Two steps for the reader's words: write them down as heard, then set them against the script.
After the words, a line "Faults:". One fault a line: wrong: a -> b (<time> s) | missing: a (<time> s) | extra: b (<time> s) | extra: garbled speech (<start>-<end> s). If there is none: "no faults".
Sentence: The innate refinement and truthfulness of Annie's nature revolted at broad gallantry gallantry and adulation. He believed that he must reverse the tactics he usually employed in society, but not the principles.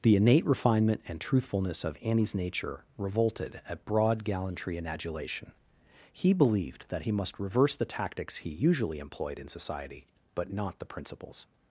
The innate refinement and truthfulness of Annie's nature revolted at broad gallantry and adulation. He believed that he must reverse the tactics he usually employed in society, but not the principles.
Faults:
missing: gallantry (4.8 s)